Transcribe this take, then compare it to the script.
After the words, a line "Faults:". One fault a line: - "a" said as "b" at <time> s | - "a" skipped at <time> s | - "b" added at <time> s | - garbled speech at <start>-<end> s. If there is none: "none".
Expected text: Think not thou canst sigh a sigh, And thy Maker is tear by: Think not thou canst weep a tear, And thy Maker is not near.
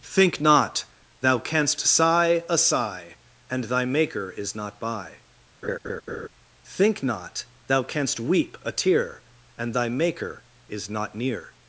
Think not thou canst sigh a sigh, And thy Maker is not by: Think not thou canst weep a tear, And thy Maker is not near.
Faults:
- "tear" said as "not" at 4.5 s